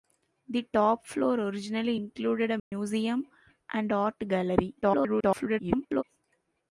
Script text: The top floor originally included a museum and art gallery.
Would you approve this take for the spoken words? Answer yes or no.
no